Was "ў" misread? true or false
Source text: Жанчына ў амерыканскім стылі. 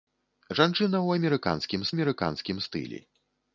false